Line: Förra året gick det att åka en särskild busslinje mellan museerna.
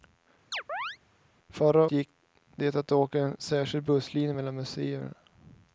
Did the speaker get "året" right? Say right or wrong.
wrong